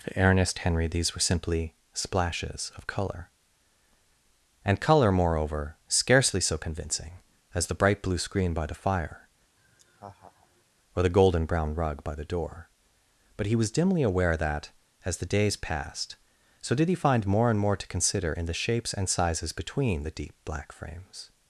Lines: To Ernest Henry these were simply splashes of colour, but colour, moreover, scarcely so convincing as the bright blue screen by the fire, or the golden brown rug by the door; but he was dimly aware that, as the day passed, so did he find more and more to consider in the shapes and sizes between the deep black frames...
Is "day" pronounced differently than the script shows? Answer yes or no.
yes